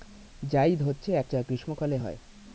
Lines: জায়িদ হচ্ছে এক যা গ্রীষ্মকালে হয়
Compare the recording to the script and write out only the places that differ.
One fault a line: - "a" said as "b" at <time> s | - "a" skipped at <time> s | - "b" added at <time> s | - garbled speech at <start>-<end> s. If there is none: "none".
none